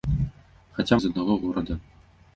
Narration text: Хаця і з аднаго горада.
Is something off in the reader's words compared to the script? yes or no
no